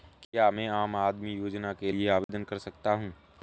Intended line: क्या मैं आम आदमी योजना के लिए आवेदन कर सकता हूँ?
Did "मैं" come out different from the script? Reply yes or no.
no